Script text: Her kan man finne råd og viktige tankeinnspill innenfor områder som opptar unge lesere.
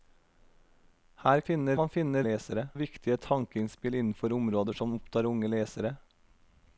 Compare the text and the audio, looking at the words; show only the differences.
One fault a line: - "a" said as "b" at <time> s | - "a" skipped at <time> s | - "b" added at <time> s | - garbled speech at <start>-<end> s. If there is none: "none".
- "kan" said as "finne" at 1.5 s
- "råd" said as "lesere" at 2.3 s